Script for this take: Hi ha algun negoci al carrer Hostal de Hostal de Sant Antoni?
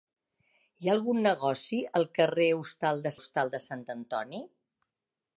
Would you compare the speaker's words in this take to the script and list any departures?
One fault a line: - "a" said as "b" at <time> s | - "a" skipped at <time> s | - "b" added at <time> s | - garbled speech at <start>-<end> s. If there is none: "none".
none